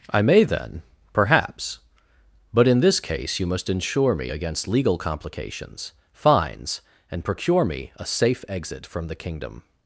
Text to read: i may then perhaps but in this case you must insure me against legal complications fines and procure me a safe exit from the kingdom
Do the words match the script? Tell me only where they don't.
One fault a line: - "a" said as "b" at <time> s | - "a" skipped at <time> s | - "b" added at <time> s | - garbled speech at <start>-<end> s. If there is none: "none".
none